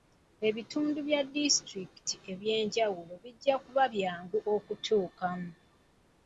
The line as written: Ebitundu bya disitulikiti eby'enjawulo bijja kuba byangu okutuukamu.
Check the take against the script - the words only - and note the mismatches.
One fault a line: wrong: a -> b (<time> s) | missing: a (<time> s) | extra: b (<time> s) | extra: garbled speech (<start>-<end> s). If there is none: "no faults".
no faults